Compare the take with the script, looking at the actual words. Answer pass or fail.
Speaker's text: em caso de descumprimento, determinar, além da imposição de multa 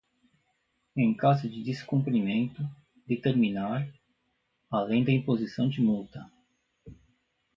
pass